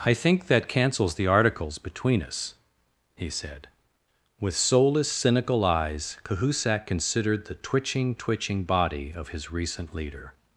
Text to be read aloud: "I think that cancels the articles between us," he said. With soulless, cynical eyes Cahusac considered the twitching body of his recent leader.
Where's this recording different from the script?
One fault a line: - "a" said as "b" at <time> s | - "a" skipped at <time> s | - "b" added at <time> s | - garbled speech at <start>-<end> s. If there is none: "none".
- "twitching" added at 8.1 s